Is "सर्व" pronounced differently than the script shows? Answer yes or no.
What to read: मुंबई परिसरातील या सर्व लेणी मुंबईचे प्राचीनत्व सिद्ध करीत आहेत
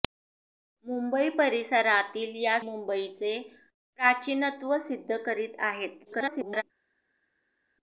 yes